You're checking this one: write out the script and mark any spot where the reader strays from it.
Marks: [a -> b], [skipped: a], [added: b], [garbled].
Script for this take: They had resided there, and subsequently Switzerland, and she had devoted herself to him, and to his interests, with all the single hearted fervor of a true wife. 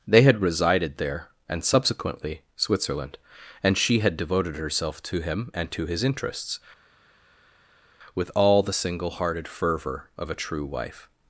They had resided there, and subsequently Switzerland, and she had devoted herself to him, and to his interests, with all the single hearted fervor of a true wife.